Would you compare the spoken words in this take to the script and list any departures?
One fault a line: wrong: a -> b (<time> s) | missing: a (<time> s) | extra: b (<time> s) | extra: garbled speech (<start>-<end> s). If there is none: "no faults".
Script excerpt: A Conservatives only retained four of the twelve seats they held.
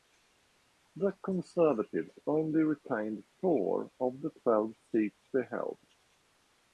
wrong: A -> The (0.9 s)